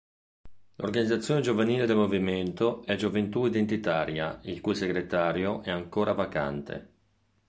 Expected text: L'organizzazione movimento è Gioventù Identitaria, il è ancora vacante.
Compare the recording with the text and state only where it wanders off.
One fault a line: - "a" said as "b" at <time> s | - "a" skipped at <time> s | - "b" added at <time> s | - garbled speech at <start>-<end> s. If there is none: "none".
- "giovanile del" added at 1.4 s
- "cui segretario" added at 4.6 s